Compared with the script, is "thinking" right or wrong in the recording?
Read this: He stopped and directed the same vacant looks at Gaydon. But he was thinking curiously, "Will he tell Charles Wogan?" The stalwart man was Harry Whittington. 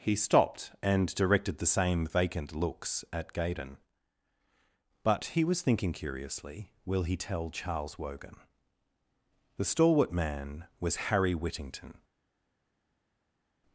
right